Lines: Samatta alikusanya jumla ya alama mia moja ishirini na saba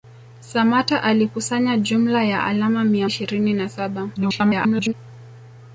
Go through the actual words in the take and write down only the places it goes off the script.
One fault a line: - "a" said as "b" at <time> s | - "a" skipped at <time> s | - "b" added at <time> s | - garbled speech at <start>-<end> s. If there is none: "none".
- "moja" skipped at 3.1 s
- garbled speech at 4.2-4.9 s